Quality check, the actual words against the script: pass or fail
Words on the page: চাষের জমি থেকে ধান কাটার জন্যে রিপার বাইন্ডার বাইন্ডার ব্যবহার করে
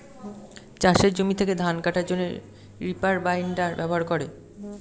fail